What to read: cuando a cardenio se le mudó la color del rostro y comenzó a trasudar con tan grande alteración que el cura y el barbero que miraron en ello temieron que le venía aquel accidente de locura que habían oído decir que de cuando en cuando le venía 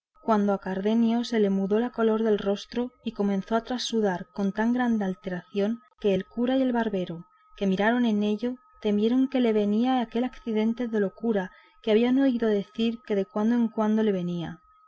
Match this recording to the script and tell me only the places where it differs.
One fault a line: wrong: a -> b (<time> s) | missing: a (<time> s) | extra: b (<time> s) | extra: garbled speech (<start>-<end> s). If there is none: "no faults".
no faults